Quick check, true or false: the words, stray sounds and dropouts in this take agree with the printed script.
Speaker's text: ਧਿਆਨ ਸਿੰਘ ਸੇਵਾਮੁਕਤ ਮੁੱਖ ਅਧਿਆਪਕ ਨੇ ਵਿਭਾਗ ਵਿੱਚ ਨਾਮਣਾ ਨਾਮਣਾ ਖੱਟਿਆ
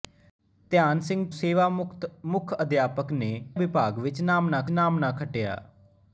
true